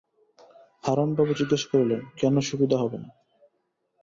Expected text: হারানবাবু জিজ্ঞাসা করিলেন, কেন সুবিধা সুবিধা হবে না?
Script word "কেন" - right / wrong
right